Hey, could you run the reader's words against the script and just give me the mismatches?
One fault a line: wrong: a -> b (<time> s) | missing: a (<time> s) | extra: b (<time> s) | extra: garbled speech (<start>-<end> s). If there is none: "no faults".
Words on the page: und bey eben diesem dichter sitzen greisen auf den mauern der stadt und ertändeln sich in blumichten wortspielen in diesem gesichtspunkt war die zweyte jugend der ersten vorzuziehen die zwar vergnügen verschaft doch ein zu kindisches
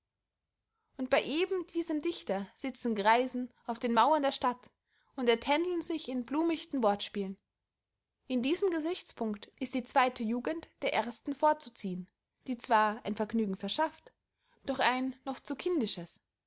wrong: war -> ist (9.6 s)
extra: ein (13.1 s)
extra: noch (15.2 s)